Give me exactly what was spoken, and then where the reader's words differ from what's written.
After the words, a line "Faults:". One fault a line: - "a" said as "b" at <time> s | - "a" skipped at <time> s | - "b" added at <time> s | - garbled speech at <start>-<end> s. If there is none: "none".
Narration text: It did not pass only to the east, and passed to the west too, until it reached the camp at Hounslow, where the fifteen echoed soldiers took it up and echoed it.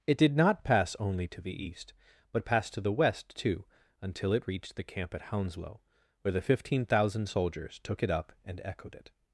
It did not pass only to the east, but passed to the west too, until it reached the camp at Hounslow, where the fifteen thousand soldiers took it up and echoed it.
Faults:
- "and" said as "but" at 2.3 s
- "echoed" said as "thousand" at 6.9 s